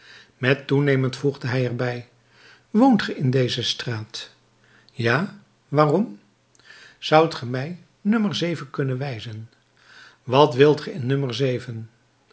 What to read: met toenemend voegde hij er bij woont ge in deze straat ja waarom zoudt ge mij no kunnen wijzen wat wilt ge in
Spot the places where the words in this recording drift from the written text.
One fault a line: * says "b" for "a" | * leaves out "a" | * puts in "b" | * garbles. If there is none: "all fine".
all fine